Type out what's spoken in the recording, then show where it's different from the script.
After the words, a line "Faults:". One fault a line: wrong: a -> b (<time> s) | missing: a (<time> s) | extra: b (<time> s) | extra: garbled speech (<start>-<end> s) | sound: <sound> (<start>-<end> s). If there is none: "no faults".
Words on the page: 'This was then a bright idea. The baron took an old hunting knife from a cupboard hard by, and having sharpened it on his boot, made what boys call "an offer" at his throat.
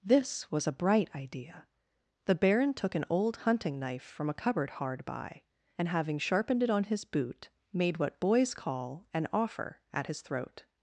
'This was a bright idea. The baron took an old hunting knife from a cupboard hard by, and having sharpened it on his boot, made what boys call "an offer" at his throat.
Faults:
missing: then (0.7 s)